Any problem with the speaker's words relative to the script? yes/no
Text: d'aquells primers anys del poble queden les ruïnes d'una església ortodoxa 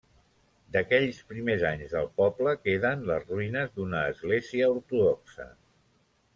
no